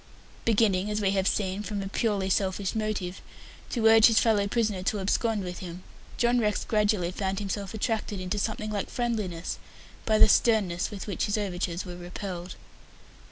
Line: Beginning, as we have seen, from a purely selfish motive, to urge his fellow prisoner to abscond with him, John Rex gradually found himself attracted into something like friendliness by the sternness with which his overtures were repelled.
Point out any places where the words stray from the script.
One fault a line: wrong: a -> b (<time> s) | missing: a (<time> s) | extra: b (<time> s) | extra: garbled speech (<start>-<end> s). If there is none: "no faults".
no faults